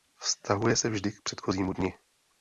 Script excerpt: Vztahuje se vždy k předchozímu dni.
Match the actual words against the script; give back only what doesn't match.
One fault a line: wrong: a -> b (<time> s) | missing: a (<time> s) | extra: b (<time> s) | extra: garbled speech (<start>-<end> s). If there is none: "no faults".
no faults